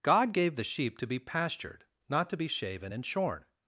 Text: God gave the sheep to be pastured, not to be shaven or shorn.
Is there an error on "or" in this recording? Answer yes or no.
yes